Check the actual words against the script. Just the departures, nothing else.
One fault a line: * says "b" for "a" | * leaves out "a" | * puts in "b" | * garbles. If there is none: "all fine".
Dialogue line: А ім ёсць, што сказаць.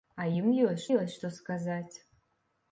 * puts in "ёсць"